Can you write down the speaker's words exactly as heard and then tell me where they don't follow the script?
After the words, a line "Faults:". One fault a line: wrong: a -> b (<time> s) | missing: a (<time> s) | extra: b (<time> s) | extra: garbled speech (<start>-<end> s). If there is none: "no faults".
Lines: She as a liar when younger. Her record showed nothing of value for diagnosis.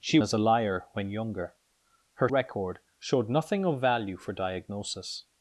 She as a liar when younger. Her record showed nothing of value for diagnosis.
Faults:
no faults